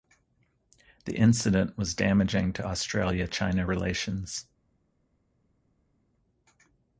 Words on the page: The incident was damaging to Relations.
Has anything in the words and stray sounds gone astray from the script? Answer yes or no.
yes